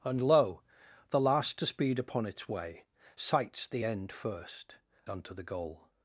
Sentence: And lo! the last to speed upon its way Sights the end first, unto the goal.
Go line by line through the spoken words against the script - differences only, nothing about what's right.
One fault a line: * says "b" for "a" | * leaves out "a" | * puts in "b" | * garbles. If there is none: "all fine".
all fine